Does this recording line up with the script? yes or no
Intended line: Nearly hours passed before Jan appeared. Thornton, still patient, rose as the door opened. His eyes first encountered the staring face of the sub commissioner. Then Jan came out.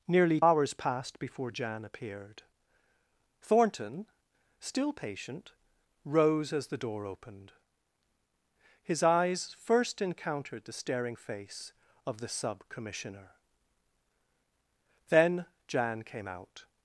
yes